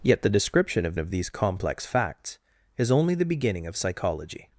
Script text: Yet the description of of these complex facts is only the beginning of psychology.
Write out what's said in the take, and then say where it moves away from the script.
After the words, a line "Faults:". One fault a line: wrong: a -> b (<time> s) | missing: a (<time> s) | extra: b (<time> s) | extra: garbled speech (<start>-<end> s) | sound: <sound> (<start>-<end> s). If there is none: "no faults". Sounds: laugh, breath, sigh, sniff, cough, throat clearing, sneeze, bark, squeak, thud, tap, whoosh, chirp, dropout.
Yet the description of of these complex facts is only the beginning of psychology.
Faults:
no faults